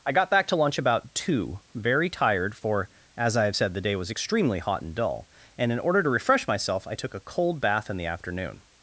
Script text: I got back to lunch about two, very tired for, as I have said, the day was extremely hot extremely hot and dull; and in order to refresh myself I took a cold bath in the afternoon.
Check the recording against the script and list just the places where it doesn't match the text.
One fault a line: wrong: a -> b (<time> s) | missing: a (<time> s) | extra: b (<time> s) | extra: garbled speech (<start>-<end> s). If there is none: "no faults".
missing: extremely hot (4.8 s)